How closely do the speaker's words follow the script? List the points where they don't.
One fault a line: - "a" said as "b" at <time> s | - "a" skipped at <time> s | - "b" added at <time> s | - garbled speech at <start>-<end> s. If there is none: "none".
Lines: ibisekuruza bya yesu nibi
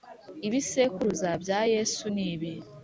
none